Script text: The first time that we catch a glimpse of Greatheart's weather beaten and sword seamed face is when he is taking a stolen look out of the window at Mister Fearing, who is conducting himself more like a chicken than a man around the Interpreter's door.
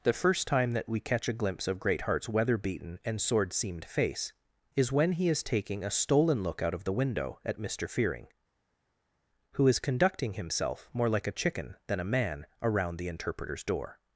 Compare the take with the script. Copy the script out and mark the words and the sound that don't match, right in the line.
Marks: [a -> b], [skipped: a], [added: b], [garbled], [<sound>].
The first time that we catch a glimpse of Greatheart's weather beaten and sword seamed face is when he is taking a stolen look out of the window at Mister Fearing, who is conducting himself more like a chicken than a man around the Interpreter's door.